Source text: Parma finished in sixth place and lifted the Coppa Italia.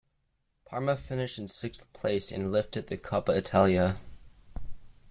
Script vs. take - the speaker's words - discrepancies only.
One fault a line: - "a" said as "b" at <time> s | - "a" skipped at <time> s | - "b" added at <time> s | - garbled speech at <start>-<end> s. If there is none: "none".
none